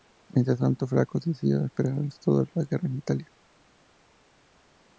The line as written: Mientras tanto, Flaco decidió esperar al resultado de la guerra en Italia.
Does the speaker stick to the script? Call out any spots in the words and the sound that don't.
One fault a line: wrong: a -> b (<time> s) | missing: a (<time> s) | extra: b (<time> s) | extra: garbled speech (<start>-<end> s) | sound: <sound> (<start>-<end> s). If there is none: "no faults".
no faults